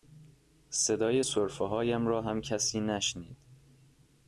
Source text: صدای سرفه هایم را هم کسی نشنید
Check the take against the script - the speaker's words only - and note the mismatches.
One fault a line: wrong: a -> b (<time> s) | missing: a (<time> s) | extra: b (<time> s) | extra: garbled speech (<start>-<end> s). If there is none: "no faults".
no faults